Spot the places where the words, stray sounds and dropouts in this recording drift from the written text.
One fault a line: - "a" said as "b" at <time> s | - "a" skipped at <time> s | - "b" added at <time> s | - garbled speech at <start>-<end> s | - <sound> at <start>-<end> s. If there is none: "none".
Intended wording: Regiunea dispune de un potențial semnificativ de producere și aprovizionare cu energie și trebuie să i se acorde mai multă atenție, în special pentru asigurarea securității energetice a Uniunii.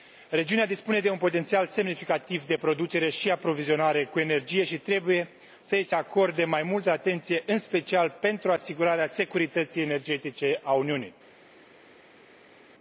none